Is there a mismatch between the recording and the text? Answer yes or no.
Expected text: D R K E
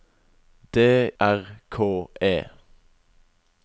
no